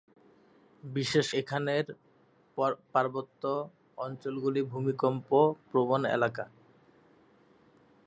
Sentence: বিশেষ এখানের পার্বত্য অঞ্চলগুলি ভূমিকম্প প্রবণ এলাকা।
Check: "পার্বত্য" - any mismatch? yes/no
no